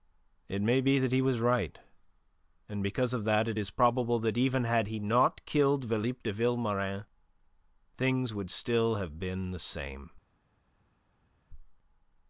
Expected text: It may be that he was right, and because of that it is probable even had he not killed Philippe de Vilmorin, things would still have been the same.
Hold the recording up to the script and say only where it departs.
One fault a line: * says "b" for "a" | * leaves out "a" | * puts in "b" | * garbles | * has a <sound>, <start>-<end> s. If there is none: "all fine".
* puts in "that"